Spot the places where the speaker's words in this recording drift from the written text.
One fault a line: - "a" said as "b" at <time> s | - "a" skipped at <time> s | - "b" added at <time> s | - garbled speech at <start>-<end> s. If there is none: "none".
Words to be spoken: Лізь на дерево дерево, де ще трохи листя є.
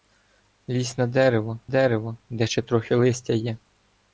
none